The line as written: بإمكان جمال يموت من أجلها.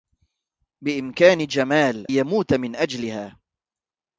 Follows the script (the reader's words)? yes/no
yes